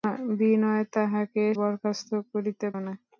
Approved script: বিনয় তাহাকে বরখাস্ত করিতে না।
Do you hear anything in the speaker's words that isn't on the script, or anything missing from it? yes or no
no